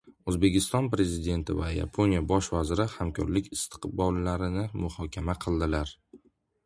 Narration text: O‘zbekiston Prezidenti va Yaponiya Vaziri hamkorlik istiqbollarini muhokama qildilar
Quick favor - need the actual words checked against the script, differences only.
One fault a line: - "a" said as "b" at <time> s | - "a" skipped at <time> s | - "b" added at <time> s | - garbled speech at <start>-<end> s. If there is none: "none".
- "Bosh" added at 2.3 s